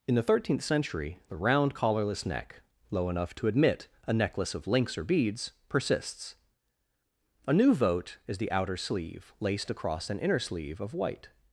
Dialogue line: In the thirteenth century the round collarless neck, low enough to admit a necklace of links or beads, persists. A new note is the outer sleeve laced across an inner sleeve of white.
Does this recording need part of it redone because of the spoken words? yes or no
yes